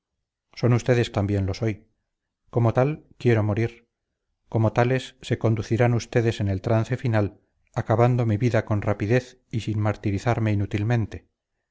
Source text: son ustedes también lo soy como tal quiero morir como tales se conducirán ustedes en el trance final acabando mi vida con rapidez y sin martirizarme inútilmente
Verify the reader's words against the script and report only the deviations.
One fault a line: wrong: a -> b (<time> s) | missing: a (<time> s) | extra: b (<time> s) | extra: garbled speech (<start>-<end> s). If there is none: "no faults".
no faults